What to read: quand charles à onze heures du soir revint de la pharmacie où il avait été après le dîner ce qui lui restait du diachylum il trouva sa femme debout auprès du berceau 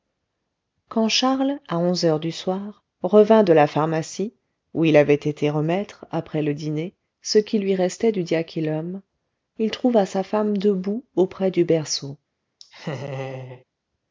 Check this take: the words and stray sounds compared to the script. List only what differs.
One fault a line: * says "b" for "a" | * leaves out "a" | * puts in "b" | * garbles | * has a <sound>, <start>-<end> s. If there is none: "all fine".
* puts in "remettre"
* has a laugh, 12.6-13.6 s